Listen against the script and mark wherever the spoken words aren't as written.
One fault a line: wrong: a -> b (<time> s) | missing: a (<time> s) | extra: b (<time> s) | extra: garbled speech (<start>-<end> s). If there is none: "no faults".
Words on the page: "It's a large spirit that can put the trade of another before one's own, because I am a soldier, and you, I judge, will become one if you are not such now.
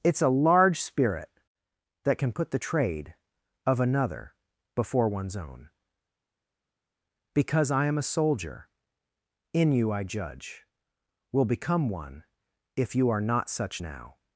wrong: and -> in (9.5 s)